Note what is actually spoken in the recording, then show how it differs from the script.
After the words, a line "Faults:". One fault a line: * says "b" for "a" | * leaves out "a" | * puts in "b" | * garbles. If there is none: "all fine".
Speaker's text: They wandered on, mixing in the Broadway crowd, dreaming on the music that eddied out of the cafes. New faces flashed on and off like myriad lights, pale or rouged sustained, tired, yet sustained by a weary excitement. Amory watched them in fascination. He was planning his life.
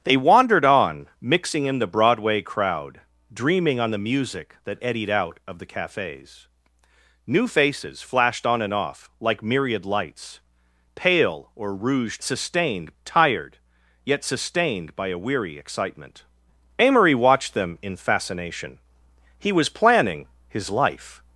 They wandered on, mixing in the Broadway crowd, dreaming on the music that eddied out of the cafes. New faces flashed on and off like myriad lights, pale or rouged sustained, tired, yet sustained by a weary excitement. Amory watched them in fascination. He was planning his life.
Faults:
all fine